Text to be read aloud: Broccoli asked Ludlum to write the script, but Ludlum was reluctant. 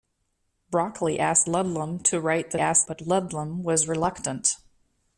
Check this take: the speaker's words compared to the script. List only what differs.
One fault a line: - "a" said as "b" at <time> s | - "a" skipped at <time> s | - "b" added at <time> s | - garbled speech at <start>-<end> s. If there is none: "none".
- "script" said as "asked" at 2.6 s